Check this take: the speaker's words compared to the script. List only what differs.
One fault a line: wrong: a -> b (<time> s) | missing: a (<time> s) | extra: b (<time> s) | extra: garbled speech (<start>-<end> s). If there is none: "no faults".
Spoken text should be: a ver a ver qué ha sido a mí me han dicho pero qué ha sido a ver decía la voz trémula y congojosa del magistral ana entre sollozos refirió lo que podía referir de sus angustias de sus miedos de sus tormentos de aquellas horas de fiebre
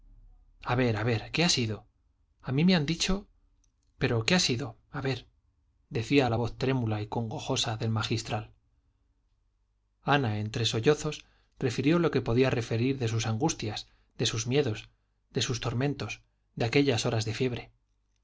no faults